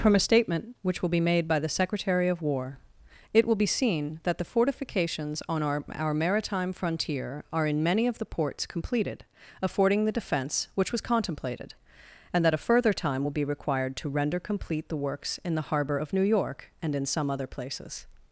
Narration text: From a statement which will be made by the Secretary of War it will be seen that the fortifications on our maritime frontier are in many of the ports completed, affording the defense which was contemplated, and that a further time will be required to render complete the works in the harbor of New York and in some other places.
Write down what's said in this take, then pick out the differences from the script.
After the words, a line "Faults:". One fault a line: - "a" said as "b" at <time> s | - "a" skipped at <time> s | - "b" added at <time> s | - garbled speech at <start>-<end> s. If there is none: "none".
From a statement which will be made by the Secretary of War it will be seen that the fortifications on our our maritime frontier are in many of the ports completed, affording the defense which was contemplated, and that a further time will be required to render complete the works in the harbor of New York and in some other places.
Faults:
- "our" added at 5.9 s